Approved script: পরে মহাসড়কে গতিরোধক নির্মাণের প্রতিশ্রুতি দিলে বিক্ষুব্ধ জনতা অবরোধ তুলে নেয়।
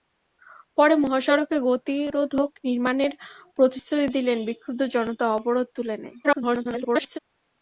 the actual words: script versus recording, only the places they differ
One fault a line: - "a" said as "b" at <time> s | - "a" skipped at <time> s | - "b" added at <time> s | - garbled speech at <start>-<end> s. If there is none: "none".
- garbled speech at 6.2-7.2 s